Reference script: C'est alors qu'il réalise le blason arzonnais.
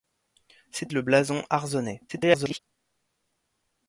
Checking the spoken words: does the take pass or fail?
fail